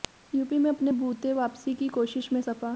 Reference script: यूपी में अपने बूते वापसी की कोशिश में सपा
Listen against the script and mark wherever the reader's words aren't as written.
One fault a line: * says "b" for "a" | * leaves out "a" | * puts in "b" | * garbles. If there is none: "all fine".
all fine